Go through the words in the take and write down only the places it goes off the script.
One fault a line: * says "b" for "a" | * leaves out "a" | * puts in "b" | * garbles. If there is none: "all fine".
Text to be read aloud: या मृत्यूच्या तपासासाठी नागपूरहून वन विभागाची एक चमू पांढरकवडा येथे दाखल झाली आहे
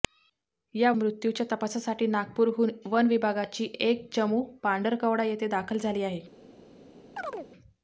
all fine